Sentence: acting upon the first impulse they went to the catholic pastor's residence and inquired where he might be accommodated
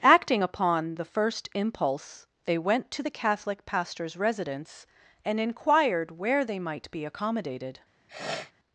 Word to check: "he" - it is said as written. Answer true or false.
false